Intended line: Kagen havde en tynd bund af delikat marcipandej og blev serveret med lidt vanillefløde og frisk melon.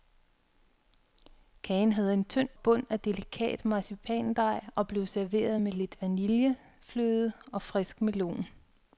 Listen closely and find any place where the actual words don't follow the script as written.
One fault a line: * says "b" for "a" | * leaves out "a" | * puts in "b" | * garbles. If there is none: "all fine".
all fine